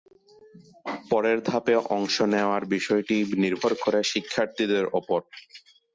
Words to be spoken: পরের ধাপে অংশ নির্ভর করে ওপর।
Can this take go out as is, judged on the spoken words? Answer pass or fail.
fail